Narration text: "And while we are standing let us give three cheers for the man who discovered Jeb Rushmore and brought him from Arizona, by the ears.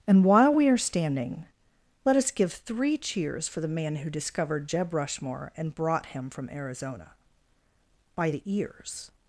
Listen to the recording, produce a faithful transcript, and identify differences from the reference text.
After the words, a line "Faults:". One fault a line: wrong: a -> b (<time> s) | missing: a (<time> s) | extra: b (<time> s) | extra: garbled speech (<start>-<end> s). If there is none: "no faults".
"And while we are standing let us give three cheers for the man who discovered Jeb Rushmore and brought him from Arizona, by the ears.
Faults:
no faults